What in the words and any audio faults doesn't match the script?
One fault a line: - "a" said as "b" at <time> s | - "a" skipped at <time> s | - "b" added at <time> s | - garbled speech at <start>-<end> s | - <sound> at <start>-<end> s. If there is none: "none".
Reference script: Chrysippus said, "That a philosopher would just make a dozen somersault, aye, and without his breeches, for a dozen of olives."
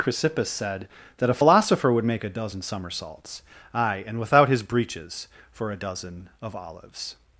- "just" skipped at 2.0 s
- "somersault" said as "somersaults" at 2.6 s